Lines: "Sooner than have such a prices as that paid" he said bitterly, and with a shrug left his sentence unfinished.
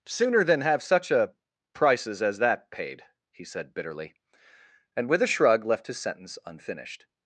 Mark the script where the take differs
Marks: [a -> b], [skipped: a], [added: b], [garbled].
"Sooner than have such a prices as that paid" he said bitterly, and with a shrug left his sentence unfinished.